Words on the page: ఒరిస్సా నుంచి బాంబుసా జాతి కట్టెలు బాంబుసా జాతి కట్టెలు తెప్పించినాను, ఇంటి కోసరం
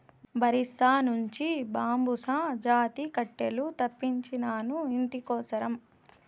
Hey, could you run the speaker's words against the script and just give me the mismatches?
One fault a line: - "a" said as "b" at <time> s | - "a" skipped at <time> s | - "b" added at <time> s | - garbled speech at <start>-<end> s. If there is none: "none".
- "బాంబుసా జాతి కట్టెలు" skipped at 3.6 s